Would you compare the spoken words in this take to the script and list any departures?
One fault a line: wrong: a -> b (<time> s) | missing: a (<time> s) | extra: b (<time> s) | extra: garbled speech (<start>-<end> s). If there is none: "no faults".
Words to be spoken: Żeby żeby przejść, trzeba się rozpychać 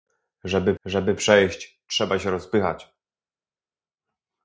no faults